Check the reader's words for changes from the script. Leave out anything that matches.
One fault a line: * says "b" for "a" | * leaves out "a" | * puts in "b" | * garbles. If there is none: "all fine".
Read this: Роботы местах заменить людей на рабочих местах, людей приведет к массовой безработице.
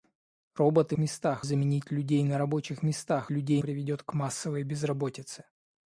all fine